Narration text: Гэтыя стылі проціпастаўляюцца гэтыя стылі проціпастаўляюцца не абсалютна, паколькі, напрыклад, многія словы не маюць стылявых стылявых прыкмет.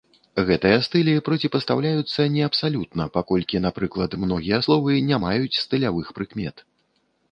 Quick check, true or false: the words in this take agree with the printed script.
false